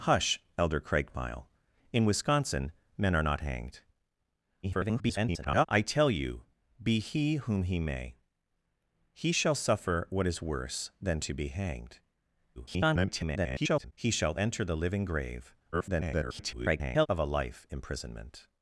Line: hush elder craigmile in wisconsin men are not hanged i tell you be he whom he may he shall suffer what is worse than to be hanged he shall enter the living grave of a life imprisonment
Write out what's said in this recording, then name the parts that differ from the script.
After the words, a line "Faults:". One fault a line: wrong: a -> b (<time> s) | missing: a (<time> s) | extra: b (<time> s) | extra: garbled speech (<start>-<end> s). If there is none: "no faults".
hush elder craigmile in wisconsin men are not hanged [garbled] i tell you be he whom he may he shall suffer what is worse than to be hanged [garbled] he shall enter the living grave [garbled] of a life imprisonment
Faults:
extra: garbled speech (4.6-5.7 s)
extra: garbled speech (12.6-13.9 s)
extra: garbled speech (15.7-17.1 s)